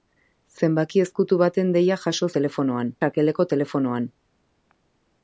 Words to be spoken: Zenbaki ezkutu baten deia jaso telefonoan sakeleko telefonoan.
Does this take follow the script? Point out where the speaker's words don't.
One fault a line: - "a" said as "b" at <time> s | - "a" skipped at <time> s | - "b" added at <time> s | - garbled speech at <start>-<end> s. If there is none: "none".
none